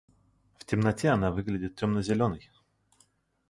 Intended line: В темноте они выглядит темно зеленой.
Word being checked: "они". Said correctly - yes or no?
no